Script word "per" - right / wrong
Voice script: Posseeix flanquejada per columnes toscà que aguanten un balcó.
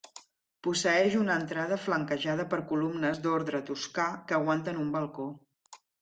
right